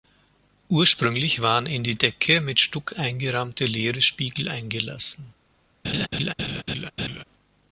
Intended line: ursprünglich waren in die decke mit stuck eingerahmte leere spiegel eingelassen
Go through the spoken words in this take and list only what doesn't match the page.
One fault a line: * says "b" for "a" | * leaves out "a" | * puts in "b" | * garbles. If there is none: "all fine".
all fine